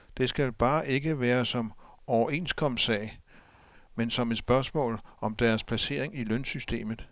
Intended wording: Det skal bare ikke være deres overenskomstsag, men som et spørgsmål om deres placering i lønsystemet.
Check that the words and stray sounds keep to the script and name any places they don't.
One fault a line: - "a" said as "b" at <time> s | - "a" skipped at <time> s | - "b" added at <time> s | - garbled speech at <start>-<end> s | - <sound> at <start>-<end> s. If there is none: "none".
- "deres" said as "som" at 1.4 s